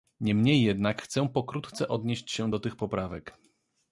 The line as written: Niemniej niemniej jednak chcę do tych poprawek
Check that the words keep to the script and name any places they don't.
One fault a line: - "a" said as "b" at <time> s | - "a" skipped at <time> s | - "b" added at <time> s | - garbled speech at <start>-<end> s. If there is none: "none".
- "niemniej" skipped at 0.6 s
- "pokrótce odnieść się" added at 1.3 s